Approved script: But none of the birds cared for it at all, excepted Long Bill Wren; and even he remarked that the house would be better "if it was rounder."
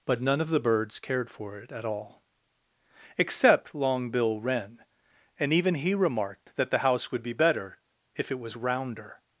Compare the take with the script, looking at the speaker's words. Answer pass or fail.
fail